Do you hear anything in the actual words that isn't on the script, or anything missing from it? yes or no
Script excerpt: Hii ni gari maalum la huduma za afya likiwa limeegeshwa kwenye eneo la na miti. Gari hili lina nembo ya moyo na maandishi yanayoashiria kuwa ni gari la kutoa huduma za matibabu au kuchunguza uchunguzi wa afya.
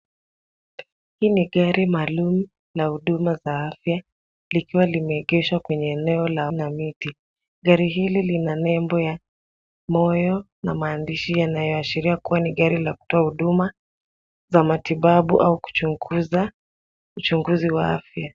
no